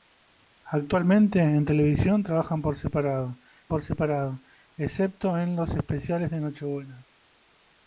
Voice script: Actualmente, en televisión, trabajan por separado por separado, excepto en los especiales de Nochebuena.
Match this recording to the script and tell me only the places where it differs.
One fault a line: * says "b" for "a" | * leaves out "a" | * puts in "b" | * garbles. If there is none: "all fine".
all fine